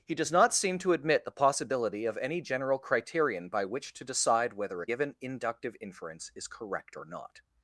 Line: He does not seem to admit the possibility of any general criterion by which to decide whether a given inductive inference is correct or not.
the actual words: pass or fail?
pass